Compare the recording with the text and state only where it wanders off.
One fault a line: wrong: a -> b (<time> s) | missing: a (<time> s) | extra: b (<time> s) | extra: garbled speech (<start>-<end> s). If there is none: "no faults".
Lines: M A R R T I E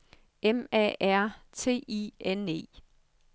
missing: R (1.3 s)
extra: N (2.2 s)